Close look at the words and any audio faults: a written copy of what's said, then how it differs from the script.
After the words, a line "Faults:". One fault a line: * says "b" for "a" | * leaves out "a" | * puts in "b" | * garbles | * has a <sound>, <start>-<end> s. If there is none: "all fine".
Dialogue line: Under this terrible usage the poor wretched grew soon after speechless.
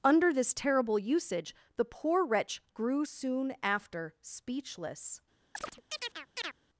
Under this terrible usage the poor wretch grew soon after speechless.
Faults:
* says "wretch" for "wretched"
* has a chirp, 5.5-6.5 s